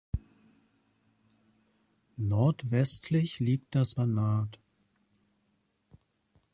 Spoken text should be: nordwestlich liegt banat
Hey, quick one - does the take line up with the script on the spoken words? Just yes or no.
no